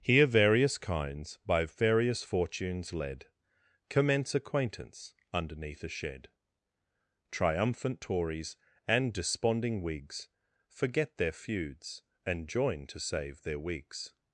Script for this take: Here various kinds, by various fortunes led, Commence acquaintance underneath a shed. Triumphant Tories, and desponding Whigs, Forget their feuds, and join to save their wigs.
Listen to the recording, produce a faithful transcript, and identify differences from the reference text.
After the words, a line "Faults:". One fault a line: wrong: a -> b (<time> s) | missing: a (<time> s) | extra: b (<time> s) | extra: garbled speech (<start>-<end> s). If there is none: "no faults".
Here various kinds, by various fortunes led, Commence acquaintance underneath a shed. Triumphant Tories, and desponding Whigs, Forget their feuds, and join to save their wigs.
Faults:
no faults